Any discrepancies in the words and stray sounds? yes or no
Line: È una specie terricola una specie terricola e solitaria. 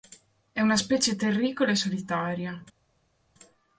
yes